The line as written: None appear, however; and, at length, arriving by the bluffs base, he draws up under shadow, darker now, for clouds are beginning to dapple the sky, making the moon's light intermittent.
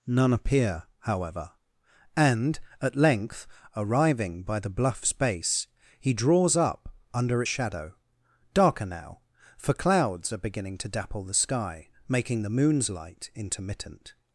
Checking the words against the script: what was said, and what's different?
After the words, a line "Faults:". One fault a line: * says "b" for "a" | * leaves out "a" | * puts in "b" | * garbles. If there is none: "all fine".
None appear, however; and, at length, arriving by the bluffs base, he draws up under shadow, darker now, for clouds are beginning to dapple the sky, making the moon's light intermittent.
Faults:
all fine